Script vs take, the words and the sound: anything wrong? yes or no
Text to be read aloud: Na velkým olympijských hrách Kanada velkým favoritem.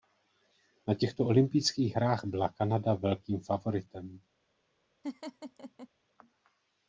yes